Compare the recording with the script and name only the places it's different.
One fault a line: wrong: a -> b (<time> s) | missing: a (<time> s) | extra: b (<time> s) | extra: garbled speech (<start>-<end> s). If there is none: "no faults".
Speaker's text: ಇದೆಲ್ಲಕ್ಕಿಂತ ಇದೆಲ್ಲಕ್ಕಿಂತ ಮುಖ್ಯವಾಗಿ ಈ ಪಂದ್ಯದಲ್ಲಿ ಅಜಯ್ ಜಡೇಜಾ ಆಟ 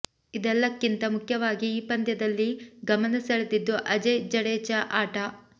missing: ಇದೆಲ್ಲಕ್ಕಿಂತ (1.0 s)
extra: ಗಮನ ಸೆಳೆದಿದ್ದು (2.9 s)